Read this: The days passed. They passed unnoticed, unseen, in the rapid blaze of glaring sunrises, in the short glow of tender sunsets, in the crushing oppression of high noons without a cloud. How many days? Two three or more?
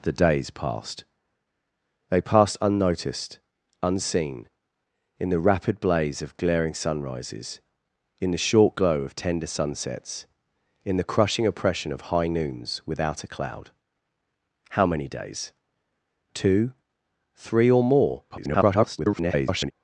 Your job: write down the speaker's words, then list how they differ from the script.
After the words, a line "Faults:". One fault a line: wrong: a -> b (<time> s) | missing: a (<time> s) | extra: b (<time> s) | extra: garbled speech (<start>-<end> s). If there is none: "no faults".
The days passed. They passed unnoticed, unseen, in the rapid blaze of glaring sunrises, in the short glow of tender sunsets, in the crushing oppression of high noons without a cloud. How many days? Two three or more? [garbled]
Faults:
extra: garbled speech (18.3-19.7 s)